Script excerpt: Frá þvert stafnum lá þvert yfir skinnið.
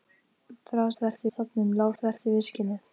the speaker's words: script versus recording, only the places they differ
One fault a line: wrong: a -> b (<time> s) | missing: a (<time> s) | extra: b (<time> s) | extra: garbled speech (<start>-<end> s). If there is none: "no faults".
no faults